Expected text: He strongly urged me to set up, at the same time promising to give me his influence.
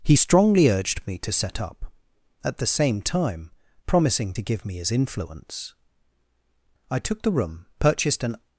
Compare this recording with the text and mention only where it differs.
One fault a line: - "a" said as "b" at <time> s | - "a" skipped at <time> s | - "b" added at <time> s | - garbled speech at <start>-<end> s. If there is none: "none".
- "I took the room purchased an" added at 6.9 s